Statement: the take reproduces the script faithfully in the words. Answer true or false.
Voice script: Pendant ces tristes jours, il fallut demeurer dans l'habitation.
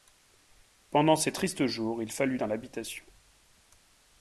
false